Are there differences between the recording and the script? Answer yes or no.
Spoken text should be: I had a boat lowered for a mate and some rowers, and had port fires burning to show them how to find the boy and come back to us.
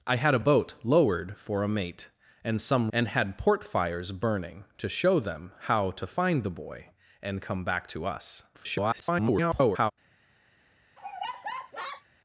yes